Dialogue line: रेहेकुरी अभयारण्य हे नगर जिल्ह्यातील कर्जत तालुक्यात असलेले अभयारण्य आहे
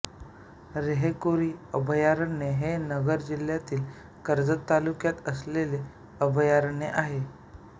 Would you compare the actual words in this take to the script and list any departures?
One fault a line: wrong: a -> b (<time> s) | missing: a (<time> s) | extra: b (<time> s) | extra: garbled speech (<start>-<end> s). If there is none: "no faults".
no faults